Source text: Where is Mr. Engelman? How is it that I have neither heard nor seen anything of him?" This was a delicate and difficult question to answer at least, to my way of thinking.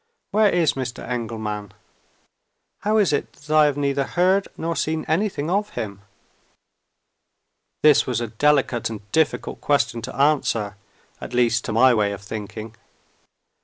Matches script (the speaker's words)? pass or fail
pass